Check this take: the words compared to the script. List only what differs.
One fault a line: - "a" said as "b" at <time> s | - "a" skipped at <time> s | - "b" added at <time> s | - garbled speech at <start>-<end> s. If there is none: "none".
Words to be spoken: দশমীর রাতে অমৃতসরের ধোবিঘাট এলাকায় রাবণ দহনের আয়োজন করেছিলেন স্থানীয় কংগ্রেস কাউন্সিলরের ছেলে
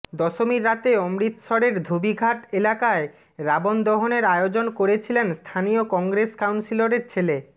none